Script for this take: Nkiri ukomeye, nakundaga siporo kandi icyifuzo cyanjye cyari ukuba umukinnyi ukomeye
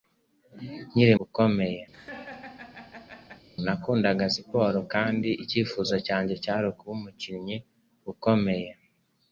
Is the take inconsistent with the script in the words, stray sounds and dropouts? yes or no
yes